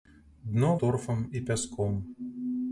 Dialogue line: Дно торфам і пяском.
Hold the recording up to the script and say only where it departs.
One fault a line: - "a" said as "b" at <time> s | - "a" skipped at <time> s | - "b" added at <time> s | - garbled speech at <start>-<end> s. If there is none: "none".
none